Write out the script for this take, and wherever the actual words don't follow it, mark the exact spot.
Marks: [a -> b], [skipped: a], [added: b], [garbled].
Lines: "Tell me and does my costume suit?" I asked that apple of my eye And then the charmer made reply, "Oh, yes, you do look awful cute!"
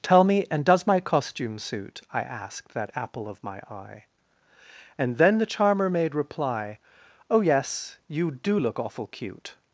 "Tell me and does my costume suit?" I asked that apple of my eye And then the charmer made reply, "Oh, yes, you do look awful cute!"